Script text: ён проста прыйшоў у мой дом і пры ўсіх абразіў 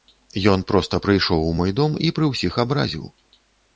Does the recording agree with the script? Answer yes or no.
yes